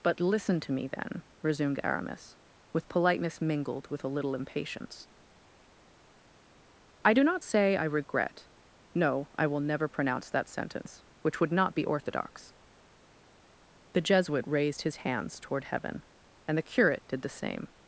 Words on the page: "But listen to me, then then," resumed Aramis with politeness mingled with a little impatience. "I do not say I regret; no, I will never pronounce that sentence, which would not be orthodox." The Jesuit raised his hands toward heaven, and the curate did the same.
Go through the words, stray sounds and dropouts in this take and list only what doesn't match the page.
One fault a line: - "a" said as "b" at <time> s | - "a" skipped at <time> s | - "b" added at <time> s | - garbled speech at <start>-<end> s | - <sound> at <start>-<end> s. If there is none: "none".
- "then" skipped at 1.2 s